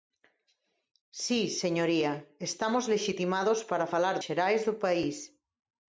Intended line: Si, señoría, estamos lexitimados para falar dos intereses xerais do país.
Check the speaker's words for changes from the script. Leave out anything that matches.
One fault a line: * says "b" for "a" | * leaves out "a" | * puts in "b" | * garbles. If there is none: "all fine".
* leaves out "dos intereses"